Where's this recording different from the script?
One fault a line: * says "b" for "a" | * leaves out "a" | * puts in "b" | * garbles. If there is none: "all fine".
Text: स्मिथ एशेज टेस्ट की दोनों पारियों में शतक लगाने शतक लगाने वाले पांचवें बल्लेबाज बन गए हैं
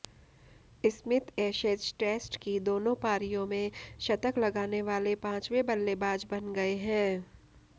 * leaves out "शतक लगाने"